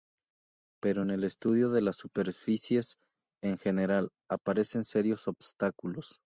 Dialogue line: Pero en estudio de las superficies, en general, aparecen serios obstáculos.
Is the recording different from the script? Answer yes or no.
yes